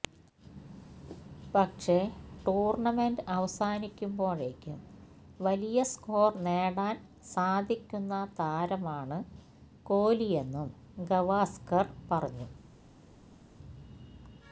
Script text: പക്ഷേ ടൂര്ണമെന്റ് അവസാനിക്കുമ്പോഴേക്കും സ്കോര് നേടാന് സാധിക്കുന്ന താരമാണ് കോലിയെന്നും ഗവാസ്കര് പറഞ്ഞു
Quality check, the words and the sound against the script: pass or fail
fail